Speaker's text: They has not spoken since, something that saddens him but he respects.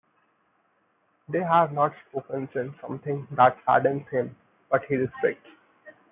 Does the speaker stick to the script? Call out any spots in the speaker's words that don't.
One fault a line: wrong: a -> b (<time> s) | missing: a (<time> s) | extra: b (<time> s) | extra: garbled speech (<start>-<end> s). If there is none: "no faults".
wrong: has -> have (1.4 s)